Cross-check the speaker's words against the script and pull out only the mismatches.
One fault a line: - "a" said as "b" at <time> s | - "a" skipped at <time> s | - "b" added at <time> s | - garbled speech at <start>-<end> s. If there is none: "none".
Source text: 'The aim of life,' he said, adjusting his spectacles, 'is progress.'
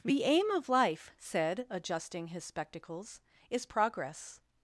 - "he" skipped at 1.1 s